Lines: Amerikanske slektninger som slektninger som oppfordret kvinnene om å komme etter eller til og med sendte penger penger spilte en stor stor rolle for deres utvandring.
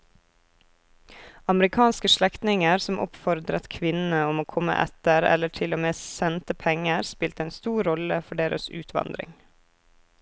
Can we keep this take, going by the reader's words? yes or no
no